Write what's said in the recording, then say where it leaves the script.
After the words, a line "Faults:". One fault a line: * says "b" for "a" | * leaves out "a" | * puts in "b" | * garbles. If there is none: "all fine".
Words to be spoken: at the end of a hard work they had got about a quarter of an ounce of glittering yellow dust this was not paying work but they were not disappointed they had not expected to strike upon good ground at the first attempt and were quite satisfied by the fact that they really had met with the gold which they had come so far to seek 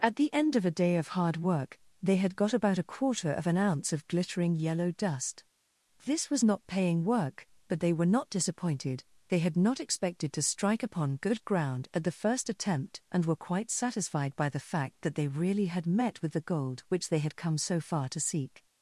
at the end of a day of hard work they had got about a quarter of an ounce of glittering yellow dust this was not paying work but they were not disappointed they had not expected to strike upon good ground at the first attempt and were quite satisfied by the fact that they really had met with the gold which they had come so far to seek
Faults:
* puts in "day of"